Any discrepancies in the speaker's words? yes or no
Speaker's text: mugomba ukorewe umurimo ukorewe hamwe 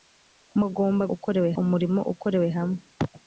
no